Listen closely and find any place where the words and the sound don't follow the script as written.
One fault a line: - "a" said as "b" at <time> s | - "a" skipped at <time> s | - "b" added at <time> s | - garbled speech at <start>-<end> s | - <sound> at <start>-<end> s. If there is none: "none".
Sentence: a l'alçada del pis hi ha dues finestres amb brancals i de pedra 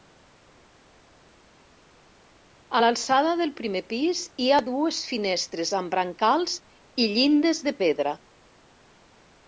- "primer" added at 3.6 s
- "llindes" added at 7.2 s